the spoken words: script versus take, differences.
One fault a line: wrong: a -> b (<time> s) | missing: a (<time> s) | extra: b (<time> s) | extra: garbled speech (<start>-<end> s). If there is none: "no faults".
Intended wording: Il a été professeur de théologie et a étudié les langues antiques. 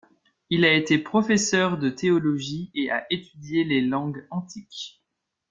no faults